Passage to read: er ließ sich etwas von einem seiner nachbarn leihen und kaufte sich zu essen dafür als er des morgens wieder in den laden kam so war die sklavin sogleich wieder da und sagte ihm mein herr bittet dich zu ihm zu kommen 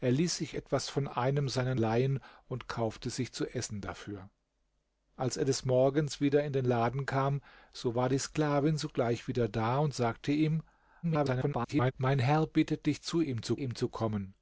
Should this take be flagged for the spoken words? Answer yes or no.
yes